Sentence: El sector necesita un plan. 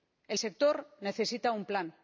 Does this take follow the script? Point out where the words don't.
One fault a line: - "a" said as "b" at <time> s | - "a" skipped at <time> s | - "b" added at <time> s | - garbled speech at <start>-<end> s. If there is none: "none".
none